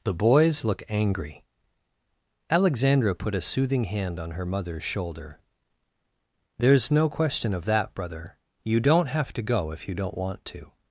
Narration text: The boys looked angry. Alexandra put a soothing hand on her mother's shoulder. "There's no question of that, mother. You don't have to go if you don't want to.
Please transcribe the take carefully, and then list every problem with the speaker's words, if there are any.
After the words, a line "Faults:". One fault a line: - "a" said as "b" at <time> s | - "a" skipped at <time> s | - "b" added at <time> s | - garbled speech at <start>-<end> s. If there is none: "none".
The boys look angry. Alexandra put a soothing hand on her mother's shoulder. "There's no question of that, brother. You don't have to go if you don't want to.
Faults:
- "looked" said as "look" at 0.6 s
- "mother" said as "brother" at 7.9 s